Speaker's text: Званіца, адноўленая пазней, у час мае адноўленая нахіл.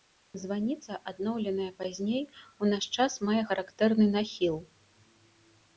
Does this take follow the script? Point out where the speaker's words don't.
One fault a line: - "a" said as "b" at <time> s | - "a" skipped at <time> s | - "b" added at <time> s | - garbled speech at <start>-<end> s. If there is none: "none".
- "наш" added at 2.7 s
- "адноўленая" said as "характэрны" at 3.5 s